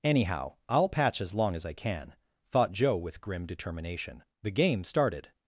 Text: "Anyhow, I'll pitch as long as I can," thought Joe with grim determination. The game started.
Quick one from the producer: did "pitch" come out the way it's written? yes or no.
no